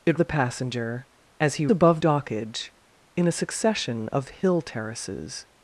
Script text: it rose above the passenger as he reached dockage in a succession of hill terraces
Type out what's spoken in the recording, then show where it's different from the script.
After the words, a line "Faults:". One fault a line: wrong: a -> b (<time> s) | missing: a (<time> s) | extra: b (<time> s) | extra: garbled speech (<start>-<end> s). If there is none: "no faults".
it the passenger as he above dockage in a succession of hill terraces
Faults:
missing: rose above (0.2 s)
wrong: reached -> above (1.7 s)